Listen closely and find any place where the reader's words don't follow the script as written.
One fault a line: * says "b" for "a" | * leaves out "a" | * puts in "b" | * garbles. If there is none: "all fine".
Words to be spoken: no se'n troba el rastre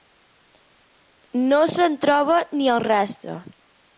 * puts in "ni"